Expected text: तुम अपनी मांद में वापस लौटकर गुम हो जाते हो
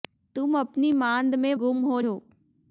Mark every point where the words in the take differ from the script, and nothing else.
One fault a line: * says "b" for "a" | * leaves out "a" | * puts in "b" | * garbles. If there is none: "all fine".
* leaves out "वापस लौटकर"
* leaves out "जाते"